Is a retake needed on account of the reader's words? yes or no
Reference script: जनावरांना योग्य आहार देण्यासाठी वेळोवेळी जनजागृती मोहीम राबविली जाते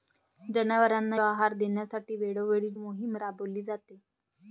yes